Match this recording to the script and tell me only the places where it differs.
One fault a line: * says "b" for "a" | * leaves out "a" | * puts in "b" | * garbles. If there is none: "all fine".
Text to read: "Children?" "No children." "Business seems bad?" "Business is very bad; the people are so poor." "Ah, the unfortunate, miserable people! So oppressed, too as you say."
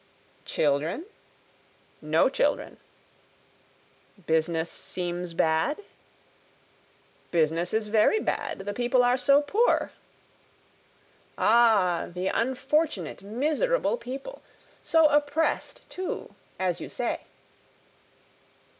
all fine